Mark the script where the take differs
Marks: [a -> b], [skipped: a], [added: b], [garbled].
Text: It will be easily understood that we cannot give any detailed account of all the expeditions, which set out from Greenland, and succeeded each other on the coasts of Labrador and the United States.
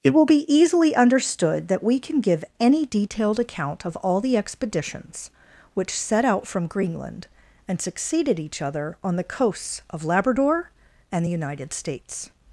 It will be easily understood that we [cannot -> can] give any detailed account of all the expeditions, which set out from Greenland, and succeeded each other on the coasts of Labrador and the United States.